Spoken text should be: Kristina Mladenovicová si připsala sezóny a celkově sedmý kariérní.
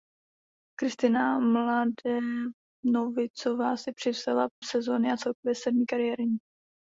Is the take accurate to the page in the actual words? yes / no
yes